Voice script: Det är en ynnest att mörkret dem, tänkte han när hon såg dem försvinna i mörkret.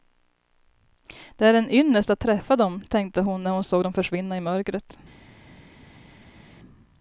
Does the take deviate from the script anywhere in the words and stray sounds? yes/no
yes